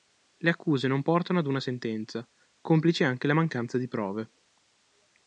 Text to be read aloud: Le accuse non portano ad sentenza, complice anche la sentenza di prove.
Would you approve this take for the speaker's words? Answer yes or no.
no